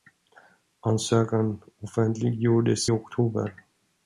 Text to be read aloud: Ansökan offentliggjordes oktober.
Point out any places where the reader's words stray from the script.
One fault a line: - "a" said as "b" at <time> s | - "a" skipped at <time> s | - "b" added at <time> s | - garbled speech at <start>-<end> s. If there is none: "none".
none